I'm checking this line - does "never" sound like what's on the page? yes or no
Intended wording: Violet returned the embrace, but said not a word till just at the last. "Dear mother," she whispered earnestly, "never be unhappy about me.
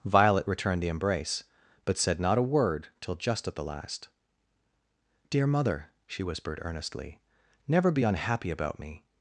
yes